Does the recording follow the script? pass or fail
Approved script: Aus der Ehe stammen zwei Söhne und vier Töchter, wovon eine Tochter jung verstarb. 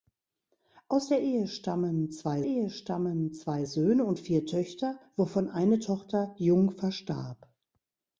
fail